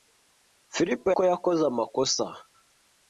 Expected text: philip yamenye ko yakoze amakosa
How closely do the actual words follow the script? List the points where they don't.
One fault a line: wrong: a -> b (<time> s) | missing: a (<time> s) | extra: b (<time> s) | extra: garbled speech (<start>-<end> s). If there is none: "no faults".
missing: yamenye (1.0 s)